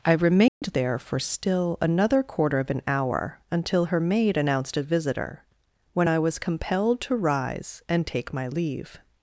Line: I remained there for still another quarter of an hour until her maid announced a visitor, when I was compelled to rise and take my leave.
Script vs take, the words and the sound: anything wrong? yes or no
yes